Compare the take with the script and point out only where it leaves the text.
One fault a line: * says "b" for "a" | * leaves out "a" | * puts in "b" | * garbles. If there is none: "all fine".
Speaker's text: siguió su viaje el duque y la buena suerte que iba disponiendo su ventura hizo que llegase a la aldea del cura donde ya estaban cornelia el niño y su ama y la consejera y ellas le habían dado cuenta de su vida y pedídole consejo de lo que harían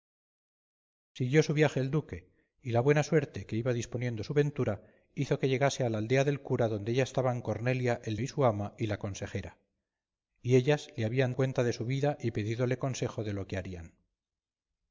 * leaves out "niño"
* leaves out "dado"